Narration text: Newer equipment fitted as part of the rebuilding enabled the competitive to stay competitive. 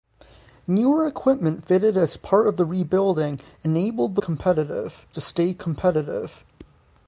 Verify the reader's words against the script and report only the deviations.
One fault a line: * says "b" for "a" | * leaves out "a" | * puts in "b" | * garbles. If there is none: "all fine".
all fine